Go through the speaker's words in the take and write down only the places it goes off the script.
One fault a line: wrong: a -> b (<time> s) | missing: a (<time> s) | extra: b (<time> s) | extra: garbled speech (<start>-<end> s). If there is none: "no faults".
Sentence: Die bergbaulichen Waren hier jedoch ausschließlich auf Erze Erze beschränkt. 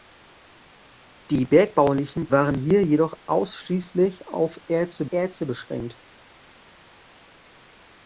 no faults